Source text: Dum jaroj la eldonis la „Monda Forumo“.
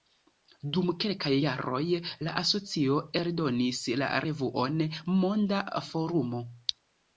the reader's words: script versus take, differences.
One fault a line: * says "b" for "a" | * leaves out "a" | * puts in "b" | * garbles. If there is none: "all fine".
* puts in "kelkaj"
* puts in "asocio"
* puts in "revuon"